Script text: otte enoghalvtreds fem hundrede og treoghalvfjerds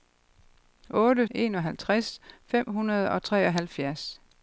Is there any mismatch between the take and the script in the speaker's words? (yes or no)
no